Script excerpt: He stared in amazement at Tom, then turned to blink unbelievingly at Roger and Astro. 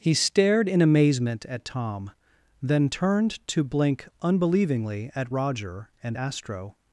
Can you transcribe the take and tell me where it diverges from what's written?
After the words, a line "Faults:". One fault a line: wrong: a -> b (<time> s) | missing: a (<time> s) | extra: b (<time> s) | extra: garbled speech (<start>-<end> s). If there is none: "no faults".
He stared in amazement at Tom, then turned to blink unbelievingly at Roger and Astro.
Faults:
no faults